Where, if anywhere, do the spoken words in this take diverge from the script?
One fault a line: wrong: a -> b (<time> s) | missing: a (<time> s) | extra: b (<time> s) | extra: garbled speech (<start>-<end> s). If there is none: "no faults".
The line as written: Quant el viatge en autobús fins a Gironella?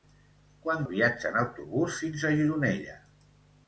no faults